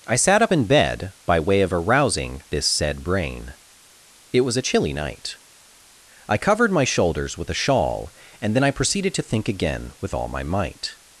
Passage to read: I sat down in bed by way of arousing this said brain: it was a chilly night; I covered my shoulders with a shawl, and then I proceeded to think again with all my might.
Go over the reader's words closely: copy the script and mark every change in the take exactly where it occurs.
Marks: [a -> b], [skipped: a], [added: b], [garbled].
I sat [down -> up] in bed by way of arousing this said brain: it was a chilly night; I covered my shoulders with a shawl, and then I proceeded to think again with all my might.